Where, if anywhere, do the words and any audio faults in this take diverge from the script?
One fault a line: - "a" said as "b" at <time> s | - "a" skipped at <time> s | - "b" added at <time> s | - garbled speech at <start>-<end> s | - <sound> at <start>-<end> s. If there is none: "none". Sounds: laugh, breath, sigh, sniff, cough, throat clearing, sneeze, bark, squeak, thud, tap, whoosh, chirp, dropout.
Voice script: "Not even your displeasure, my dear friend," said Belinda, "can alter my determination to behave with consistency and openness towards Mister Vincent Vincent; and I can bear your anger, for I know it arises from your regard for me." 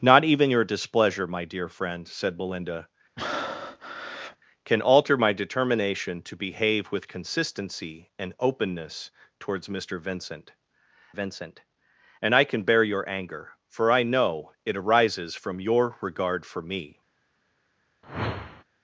- breath at 3.2-4.4 s
- whoosh at 18.0-18.6 s